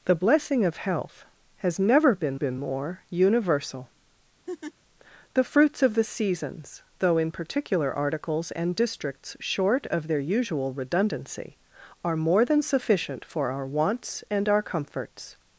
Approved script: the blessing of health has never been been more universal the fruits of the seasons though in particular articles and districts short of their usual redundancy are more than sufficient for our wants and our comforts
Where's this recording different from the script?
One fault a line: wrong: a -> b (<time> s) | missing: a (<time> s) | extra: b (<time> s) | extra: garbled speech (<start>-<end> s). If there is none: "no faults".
no faults